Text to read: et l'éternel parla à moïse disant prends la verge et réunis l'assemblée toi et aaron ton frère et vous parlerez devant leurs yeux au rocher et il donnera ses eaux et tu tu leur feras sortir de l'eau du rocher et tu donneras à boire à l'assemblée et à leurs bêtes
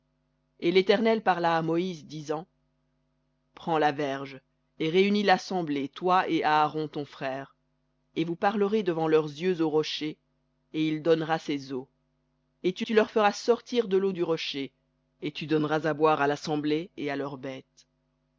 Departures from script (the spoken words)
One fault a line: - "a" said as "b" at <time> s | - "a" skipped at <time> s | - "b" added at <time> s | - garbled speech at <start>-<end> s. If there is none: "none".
none